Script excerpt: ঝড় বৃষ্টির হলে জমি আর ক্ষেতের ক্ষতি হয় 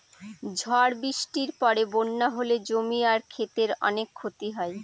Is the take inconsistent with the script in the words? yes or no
yes